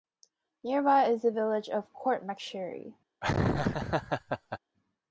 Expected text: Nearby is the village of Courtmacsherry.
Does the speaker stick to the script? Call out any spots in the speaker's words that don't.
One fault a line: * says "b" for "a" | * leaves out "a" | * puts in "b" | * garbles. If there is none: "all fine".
all fine